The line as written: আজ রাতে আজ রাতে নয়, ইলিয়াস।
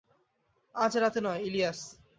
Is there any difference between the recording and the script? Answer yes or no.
yes